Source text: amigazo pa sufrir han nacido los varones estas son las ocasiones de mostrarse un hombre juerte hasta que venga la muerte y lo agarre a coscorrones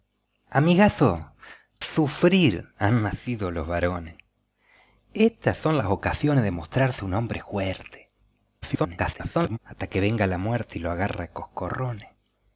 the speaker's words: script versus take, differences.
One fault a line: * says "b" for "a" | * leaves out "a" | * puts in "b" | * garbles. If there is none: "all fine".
* leaves out "pa"
* garbles